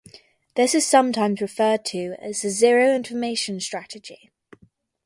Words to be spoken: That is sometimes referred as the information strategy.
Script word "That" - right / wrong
wrong